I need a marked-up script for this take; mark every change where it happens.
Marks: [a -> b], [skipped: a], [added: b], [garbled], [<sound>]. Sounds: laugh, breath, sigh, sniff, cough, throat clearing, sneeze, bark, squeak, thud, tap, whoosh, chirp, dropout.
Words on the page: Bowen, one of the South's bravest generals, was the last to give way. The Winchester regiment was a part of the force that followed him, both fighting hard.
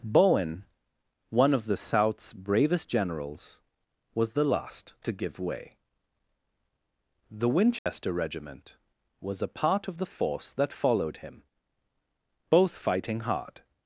Bowen, one of the South's bravest generals, was the last to give way. The Winchester [dropout] regiment was a part of the force that followed him, both fighting hard.